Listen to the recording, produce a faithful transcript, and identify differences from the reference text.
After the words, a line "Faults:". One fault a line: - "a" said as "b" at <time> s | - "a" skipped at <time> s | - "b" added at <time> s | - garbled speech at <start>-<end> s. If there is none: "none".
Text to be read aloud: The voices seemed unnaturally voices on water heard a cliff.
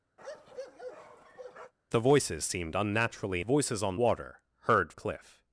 The voices seemed unnaturally voices on water heard a cliff.
Faults:
none